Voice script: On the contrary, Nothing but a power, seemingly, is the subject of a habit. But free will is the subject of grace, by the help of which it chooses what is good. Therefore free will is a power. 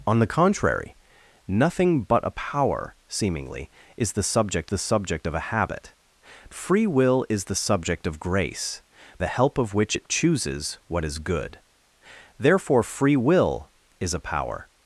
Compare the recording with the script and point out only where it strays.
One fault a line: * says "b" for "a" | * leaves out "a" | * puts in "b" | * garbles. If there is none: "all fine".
* puts in "the subject"
* leaves out "But"
* leaves out "by"